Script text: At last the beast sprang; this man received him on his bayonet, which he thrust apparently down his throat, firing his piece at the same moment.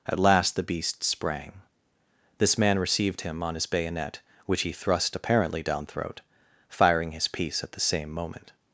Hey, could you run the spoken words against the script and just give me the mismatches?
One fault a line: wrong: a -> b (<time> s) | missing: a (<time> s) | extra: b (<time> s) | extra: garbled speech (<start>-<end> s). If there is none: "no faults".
missing: his (5.8 s)